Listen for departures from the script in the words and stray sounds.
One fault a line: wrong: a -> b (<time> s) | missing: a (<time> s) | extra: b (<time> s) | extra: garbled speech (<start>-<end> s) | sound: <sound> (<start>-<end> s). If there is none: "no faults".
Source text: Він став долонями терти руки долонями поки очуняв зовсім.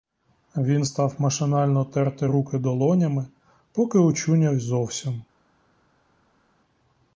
wrong: долонями -> машинально (1.2 s)